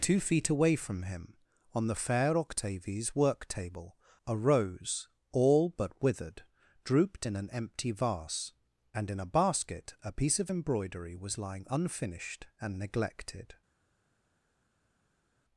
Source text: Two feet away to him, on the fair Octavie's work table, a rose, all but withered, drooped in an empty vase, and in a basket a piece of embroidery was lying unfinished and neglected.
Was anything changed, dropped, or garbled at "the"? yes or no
no